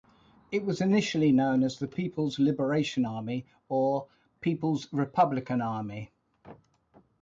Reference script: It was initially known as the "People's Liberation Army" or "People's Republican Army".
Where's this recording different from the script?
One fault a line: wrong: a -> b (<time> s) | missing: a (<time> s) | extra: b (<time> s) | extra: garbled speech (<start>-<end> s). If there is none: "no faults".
no faults